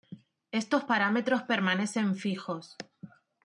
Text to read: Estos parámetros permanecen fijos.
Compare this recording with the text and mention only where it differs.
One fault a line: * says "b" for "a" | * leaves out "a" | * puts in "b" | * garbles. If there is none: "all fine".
all fine